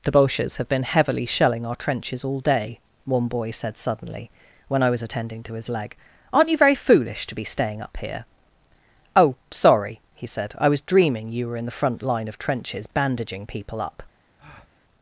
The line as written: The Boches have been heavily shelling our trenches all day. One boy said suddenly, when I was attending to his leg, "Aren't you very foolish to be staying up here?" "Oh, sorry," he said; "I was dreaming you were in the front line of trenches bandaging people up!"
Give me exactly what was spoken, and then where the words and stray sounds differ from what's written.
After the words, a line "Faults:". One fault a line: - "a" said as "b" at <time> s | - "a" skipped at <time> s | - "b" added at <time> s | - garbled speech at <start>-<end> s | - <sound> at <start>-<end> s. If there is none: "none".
The Boches have been heavily shelling our trenches all day. One boy said suddenly, when I was attending to his leg, "Aren't you very foolish to be staying up here?" "Oh, sorry," he said; "I was dreaming you were in the front line of trenches bandaging people up!"
Faults:
- breath at 14.4-14.8 s